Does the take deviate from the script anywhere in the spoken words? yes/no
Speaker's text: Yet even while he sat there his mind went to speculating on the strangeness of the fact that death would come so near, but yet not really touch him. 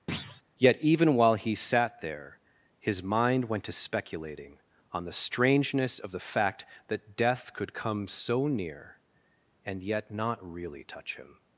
yes